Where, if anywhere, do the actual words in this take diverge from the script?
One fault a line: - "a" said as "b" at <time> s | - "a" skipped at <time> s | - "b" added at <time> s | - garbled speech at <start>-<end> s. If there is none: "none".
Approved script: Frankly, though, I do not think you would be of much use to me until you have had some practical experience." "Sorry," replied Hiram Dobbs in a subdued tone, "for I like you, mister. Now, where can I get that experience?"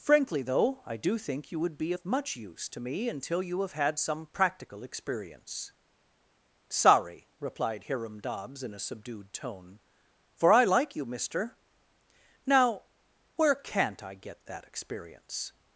- "not" skipped at 1.2 s
- "can" said as "can't" at 13.5 s